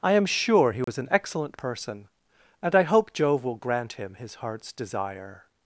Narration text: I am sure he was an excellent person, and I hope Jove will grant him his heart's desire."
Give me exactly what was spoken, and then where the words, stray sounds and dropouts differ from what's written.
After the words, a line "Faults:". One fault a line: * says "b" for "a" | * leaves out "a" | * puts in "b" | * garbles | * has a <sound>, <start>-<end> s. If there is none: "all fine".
I am sure he was an excellent person, and I hope Jove will grant him his heart's desire."
Faults:
* has a dropout, 0.8-0.9 s